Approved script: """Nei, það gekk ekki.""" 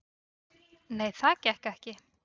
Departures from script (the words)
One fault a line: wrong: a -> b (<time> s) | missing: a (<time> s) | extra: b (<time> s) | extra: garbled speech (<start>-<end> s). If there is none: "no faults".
no faults